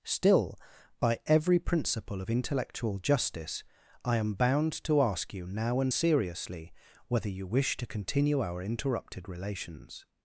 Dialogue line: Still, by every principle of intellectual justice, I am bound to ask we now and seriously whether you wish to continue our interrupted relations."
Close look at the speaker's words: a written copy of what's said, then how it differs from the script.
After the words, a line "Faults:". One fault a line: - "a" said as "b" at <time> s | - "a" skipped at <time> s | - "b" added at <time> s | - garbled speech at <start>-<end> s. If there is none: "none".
Still, by every principle of intellectual justice, I am bound to ask you now and seriously whether you wish to continue our interrupted relations."
Faults:
- "we" said as "you" at 5.3 s